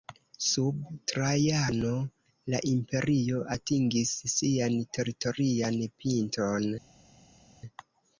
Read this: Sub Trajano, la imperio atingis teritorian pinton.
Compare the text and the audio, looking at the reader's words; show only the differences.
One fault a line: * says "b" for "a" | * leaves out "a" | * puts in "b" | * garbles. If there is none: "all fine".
* puts in "sian"